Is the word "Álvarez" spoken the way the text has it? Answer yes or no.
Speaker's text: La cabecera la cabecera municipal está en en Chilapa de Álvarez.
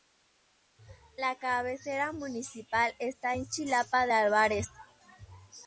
yes